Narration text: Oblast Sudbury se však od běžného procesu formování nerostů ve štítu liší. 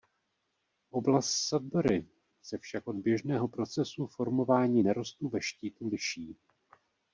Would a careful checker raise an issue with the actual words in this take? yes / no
no